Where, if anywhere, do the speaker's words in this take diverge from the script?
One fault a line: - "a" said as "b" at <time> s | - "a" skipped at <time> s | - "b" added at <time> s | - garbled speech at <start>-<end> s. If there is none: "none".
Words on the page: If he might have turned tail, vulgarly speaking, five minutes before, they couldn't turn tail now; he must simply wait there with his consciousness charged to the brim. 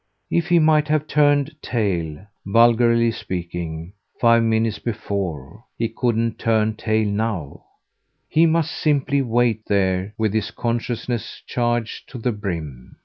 - "they" said as "he" at 5.8 s